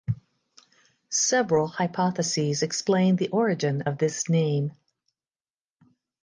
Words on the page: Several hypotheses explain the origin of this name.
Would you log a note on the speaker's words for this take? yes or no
no